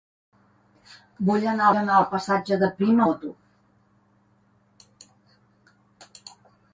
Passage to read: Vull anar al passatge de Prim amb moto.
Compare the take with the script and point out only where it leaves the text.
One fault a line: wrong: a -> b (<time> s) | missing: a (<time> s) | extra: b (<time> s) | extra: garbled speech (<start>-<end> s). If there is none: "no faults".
extra: anar (1.8 s)
missing: amb (3.0 s)